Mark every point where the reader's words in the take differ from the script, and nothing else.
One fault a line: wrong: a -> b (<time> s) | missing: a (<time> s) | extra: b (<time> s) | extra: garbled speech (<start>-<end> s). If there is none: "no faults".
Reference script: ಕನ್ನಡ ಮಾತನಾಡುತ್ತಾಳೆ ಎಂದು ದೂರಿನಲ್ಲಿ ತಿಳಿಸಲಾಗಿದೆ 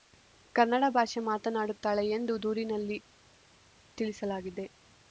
extra: ಭಾಷೆ (0.9 s)